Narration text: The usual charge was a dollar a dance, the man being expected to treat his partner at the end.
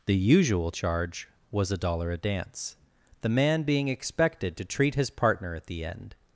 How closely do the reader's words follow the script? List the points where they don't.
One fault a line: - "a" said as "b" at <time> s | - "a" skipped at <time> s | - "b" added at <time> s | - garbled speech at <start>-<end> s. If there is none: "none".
none